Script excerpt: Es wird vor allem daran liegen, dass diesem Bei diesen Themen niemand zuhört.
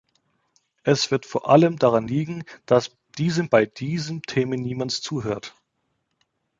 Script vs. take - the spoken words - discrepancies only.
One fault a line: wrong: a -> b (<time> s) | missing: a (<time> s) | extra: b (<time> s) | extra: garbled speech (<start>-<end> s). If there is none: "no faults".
no faults